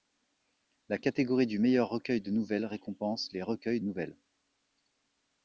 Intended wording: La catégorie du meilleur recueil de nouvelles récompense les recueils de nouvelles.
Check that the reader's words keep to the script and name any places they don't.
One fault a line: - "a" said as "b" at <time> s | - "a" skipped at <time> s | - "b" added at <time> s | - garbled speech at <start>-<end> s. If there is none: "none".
- "de" skipped at 3.8 s